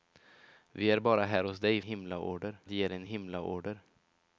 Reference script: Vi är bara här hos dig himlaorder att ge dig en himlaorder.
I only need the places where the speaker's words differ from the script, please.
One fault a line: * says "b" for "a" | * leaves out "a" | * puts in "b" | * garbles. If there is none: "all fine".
all fine